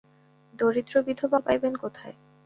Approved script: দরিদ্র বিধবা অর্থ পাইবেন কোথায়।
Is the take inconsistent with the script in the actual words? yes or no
yes